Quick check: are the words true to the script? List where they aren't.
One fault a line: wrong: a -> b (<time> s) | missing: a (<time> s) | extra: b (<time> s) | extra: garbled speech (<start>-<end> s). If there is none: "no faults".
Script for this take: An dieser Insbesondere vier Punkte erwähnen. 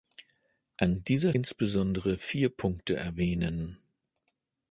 no faults